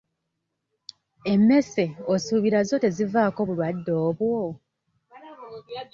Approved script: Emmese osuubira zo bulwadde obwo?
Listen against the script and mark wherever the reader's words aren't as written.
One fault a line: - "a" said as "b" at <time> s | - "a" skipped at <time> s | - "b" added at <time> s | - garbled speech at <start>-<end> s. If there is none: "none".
- "tezivaako" added at 2.8 s